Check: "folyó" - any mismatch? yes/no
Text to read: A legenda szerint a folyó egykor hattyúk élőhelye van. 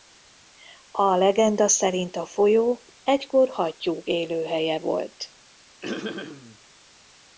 no